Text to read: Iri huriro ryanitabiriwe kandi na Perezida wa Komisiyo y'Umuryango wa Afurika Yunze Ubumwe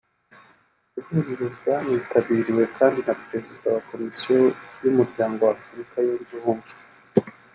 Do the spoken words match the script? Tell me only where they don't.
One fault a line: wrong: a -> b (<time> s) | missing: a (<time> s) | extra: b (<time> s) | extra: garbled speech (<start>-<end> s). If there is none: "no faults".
no faults